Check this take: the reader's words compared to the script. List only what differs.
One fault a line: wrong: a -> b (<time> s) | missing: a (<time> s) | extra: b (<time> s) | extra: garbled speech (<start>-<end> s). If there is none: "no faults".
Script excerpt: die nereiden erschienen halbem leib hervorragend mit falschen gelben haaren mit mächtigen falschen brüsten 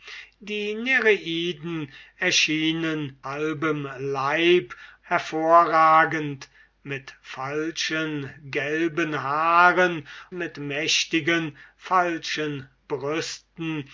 no faults